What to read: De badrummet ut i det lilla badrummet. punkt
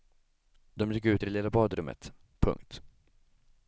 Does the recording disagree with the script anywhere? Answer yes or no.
yes